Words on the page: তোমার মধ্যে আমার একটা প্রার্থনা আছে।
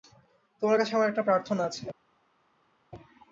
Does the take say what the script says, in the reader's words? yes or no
no